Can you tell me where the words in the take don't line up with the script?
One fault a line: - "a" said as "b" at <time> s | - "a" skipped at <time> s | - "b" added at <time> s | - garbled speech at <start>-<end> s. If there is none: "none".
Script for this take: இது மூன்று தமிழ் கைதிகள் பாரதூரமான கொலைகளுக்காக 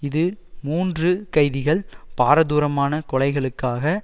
- "தமிழ்" skipped at 1.1 s